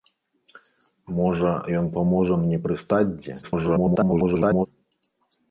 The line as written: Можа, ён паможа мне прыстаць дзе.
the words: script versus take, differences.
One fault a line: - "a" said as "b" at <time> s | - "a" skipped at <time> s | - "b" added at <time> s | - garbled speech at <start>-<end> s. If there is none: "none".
- garbled speech at 3.4-4.7 s